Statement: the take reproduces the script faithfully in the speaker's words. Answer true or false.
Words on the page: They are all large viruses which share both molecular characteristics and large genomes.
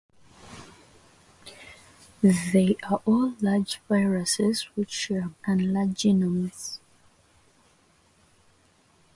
false